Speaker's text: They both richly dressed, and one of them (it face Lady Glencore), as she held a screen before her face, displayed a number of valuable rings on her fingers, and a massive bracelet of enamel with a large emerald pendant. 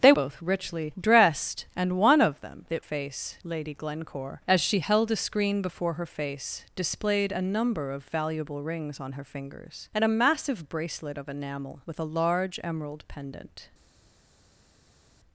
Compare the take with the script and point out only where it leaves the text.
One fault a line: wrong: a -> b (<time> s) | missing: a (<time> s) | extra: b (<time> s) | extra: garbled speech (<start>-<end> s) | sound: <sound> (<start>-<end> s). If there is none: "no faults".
no faults